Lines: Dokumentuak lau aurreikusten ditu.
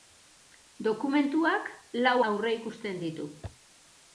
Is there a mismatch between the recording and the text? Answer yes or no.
no